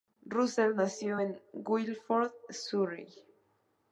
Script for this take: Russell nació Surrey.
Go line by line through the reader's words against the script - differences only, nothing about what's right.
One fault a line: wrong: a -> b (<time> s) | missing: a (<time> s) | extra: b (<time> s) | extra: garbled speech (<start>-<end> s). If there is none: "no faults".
extra: en Guildford (1.2 s)